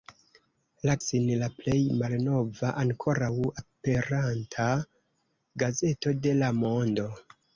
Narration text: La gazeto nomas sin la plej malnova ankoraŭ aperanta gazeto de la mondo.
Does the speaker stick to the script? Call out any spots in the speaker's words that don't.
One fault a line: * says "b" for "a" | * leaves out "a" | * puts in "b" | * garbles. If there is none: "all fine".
* leaves out "gazeto nomas"